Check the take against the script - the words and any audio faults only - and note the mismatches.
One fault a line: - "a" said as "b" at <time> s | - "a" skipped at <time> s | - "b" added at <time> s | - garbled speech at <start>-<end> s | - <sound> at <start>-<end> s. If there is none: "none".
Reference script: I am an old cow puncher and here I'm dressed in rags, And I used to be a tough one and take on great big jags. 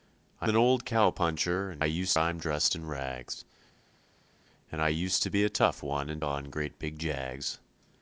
- "am" skipped at 0.5 s
- "here" said as "used" at 1.8 s
- "take" skipped at 6.2 s